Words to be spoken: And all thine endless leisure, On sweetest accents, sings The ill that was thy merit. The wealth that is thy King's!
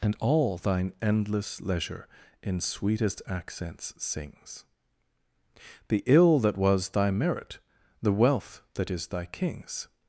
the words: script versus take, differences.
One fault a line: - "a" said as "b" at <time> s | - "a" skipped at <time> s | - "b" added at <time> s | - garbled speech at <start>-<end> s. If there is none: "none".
- "On" said as "In" at 2.4 s